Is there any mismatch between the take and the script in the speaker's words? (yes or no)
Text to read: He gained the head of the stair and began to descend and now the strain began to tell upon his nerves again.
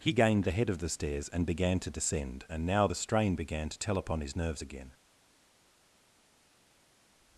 yes